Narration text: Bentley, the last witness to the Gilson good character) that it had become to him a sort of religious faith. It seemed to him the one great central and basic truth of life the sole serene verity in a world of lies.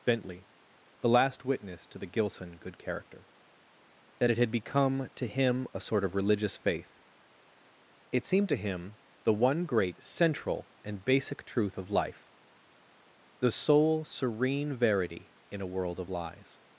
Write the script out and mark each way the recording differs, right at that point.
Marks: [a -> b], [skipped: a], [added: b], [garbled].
Bentley, the last witness to the Gilson good character) that it had become to him a sort of religious faith. It seemed to him the one great central and basic truth of life the sole serene verity in a world of lies.